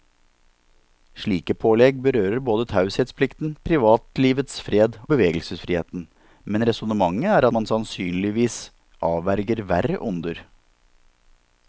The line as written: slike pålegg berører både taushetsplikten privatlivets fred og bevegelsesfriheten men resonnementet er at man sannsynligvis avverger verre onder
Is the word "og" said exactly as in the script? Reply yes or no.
no